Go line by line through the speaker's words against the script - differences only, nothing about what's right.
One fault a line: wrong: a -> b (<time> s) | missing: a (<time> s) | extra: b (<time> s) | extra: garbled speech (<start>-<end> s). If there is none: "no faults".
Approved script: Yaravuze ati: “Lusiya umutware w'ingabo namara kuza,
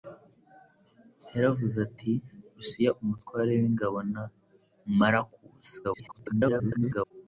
extra: garbled speech (5.8-7.1 s)